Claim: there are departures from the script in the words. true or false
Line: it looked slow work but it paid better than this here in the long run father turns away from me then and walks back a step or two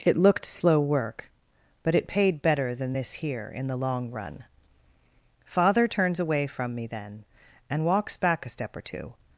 false